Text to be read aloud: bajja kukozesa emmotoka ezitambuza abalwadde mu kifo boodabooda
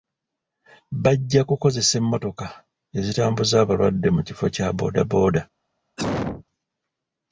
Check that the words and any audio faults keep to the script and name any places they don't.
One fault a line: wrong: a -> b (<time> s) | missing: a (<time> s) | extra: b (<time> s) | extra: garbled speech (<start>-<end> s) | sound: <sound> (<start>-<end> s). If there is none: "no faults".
extra: kya (4.5 s)
sound: cough (6.0-6.4 s)